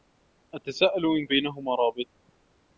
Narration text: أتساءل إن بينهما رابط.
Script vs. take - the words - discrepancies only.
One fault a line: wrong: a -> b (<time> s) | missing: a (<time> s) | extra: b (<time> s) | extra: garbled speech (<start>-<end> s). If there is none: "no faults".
no faults